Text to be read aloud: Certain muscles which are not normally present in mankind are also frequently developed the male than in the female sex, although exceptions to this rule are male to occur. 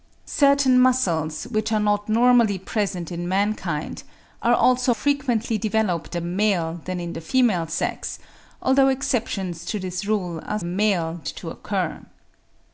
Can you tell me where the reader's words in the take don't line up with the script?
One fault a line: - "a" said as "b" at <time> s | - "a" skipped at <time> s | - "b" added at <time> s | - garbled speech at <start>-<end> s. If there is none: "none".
none